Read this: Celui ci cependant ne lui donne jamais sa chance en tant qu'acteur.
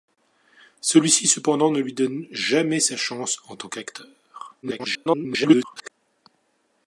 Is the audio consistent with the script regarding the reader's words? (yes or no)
no